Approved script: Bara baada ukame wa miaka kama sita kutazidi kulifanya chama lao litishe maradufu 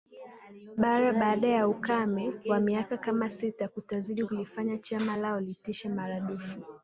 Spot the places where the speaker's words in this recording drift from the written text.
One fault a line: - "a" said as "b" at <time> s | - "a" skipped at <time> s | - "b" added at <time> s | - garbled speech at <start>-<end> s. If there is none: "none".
- "ya" added at 1.5 s